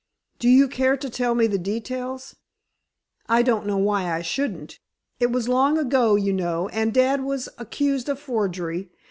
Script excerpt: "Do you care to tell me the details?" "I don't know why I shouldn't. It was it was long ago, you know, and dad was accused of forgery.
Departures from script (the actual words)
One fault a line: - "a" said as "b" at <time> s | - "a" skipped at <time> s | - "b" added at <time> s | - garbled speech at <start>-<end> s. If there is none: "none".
- "it was" skipped at 5.5 s